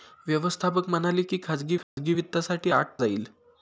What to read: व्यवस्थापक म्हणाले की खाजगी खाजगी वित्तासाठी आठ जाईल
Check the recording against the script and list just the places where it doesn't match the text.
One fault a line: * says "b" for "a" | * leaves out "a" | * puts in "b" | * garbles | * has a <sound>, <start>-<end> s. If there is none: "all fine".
* has a dropout, 1.8-2.0 s